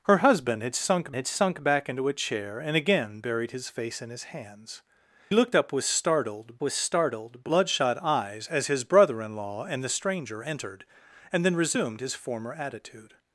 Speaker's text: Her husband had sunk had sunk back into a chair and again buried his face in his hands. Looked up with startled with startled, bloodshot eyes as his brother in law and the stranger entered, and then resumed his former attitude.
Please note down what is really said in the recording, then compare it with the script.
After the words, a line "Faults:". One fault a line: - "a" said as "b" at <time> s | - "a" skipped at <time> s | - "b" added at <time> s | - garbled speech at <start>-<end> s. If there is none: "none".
Her husband had sunk had sunk back into a chair and again buried his face in his hands. Looked up with startled with startled, bloodshot eyes as his brother in law and the stranger entered, and then resumed his former attitude.
Faults:
none